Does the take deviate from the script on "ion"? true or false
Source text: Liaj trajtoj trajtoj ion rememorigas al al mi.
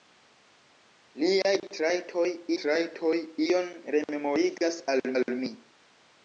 false